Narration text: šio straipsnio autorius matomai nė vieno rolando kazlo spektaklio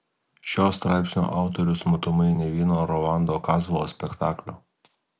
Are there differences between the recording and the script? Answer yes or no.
no